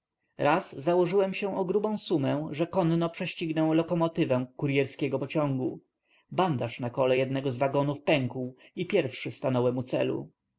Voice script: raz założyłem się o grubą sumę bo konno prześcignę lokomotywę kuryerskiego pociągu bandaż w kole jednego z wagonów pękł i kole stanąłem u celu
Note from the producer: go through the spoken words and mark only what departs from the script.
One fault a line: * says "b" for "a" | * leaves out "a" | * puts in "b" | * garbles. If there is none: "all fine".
* says "że" for "bo"
* says "na" for "w"
* says "pierwszy" for "kole"